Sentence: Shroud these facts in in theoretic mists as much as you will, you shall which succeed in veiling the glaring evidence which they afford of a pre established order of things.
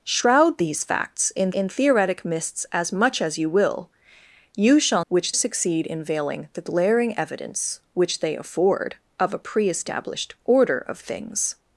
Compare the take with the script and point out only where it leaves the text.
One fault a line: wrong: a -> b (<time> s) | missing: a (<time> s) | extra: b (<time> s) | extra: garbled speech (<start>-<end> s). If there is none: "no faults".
no faults